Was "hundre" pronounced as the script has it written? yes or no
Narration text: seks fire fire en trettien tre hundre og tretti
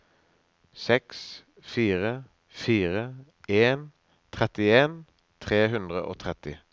yes